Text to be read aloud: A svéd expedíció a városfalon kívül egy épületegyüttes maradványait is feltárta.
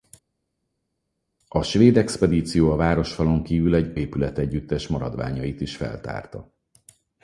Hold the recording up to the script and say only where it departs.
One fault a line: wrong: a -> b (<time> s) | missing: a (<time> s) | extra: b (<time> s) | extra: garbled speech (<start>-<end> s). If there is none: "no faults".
no faults